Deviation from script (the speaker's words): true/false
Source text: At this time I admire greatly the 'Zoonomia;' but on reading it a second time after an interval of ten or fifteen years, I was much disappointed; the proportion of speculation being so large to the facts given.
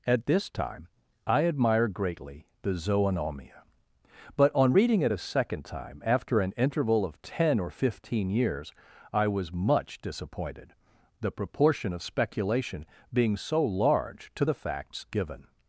false